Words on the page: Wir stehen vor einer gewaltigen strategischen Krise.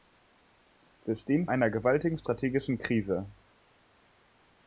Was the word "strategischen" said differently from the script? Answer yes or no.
no